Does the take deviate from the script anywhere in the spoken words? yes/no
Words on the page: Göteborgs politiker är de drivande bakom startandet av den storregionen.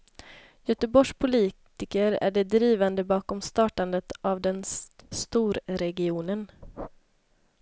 no